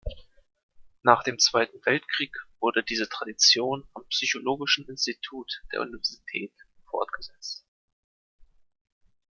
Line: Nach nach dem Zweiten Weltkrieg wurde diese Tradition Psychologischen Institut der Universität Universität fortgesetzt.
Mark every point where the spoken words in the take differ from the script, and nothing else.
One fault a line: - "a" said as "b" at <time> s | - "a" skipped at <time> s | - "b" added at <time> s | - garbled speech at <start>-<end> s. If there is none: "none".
- "nach" skipped at 1.2 s
- "am" added at 3.9 s
- "Universität" skipped at 6.5 s